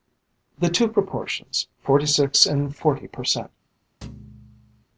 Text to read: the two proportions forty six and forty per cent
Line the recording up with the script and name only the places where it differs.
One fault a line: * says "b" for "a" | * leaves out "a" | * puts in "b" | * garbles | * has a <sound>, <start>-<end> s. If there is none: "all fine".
* has a thud, 4.0-4.8 s